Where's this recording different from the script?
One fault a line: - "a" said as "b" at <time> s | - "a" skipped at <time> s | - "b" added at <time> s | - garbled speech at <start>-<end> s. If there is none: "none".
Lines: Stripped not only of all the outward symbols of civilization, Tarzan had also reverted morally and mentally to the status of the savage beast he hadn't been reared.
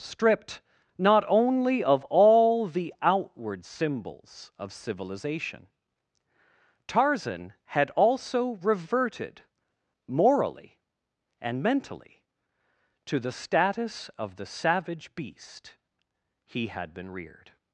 - "hadn't" said as "had" at 16.7 s